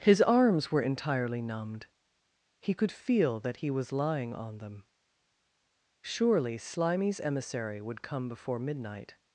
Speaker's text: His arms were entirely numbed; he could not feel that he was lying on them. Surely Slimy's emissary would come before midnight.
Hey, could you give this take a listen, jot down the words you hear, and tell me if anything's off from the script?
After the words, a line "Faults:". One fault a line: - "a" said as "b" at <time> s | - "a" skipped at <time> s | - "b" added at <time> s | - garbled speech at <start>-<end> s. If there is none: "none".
His arms were entirely numbed; he could feel that he was lying on them. Surely Slimy's emissary would come before midnight.
Faults:
- "not" skipped at 2.9 s